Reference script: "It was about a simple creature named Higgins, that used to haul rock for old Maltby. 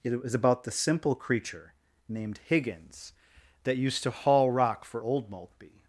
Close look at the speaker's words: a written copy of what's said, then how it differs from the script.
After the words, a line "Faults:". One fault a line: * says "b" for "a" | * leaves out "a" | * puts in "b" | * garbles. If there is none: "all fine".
"It was about the simple creature named Higgins, that used to haul rock for old Maltby.
Faults:
* says "the" for "a"